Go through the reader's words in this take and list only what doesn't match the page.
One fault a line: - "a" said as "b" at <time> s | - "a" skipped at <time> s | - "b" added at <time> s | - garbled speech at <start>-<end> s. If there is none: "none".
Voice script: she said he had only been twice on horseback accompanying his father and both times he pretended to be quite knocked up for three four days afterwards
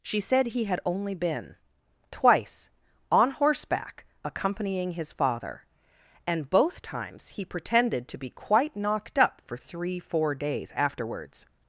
none